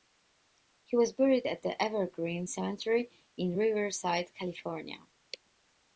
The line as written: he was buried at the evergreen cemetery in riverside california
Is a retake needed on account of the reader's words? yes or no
no